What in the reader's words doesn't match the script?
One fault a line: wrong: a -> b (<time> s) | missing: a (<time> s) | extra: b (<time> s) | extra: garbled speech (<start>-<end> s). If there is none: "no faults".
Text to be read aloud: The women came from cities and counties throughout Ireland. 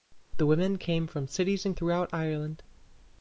missing: counties (1.8 s)